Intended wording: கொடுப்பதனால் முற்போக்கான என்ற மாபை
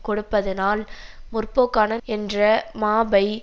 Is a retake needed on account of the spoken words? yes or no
no